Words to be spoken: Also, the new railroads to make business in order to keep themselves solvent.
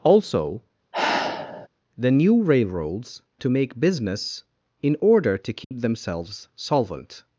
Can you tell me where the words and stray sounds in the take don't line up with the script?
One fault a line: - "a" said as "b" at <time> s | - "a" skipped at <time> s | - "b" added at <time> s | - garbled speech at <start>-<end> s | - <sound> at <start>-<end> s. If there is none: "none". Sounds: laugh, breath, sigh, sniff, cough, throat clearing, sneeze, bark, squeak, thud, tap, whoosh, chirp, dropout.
- sigh at 0.9-1.7 s
- dropout at 5.6-5.7 s